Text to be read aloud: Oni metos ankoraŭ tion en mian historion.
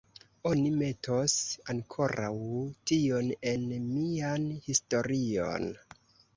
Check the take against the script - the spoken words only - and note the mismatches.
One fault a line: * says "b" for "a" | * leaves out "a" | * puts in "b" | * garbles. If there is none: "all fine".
all fine